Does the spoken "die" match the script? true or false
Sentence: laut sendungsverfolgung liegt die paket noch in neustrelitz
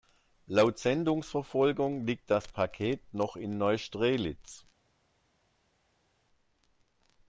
false